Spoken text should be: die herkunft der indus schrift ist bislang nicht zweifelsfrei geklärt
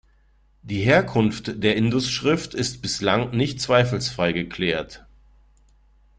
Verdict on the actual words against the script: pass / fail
pass